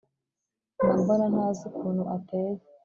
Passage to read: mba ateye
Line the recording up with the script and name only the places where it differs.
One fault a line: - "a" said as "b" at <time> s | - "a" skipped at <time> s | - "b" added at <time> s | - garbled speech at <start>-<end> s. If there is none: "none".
- "mbona ntazi ukuntu" added at 1.0 s